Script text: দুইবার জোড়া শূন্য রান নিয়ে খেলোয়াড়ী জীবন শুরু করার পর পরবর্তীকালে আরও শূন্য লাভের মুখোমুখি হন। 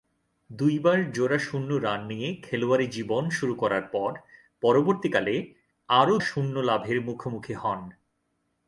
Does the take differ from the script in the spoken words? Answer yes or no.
no